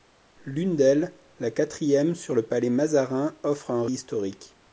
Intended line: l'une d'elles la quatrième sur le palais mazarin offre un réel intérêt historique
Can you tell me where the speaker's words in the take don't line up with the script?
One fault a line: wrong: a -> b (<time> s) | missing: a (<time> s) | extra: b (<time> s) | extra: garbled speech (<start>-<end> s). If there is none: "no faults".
missing: réel intérêt (3.9 s)